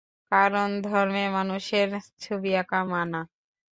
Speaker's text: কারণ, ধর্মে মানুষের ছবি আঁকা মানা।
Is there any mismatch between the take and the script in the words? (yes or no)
no